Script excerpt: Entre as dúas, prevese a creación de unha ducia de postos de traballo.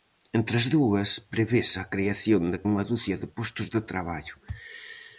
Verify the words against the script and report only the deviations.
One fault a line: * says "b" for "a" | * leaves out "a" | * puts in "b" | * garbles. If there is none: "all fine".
all fine